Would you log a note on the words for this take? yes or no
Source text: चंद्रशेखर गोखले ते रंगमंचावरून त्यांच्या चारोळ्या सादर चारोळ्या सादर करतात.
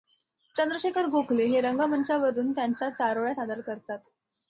yes